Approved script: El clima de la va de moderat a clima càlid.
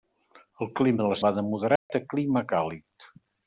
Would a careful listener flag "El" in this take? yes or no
no